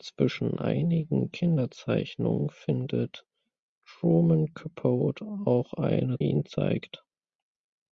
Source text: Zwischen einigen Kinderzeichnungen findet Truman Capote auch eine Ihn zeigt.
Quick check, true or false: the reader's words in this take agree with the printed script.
true